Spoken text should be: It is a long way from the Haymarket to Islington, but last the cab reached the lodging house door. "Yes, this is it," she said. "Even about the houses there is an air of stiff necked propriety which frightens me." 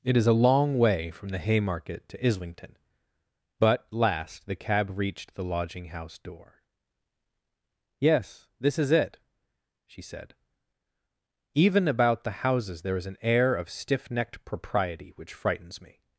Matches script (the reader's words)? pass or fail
pass